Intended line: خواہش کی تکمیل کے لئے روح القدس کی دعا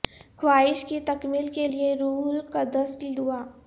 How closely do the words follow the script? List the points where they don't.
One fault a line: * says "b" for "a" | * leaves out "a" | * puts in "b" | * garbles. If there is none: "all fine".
all fine